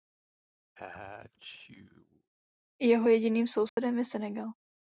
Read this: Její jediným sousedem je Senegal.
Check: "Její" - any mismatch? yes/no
yes